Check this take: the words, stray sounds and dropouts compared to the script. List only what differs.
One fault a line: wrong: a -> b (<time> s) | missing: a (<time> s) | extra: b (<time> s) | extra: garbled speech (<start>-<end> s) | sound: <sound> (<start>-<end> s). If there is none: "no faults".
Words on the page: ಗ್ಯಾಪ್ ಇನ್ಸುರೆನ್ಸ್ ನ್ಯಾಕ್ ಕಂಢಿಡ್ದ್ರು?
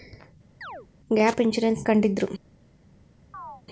sound: chirp (0.6-0.9 s)
missing: ನ್ಯಾಕ್ (1.9 s)
sound: chirp (3.3-3.6 s)